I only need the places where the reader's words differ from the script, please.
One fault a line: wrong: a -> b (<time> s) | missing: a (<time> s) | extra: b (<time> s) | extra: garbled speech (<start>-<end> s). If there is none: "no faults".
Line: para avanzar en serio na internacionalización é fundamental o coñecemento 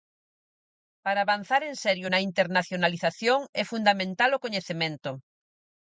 no faults